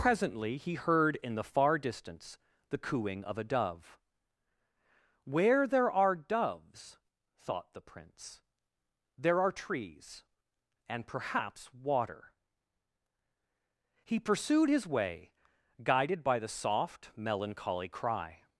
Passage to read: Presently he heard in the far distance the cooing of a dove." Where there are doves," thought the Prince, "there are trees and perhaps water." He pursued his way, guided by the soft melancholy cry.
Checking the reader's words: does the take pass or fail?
pass